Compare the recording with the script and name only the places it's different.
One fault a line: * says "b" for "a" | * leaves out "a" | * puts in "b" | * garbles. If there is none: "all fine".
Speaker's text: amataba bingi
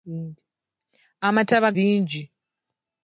all fine